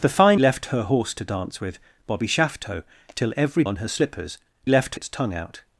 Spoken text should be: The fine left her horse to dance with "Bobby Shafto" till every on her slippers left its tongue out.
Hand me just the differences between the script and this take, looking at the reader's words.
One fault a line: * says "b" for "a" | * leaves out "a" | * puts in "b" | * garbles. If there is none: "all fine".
all fine